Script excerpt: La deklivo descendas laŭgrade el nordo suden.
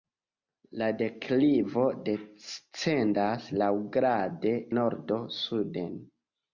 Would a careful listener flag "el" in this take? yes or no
yes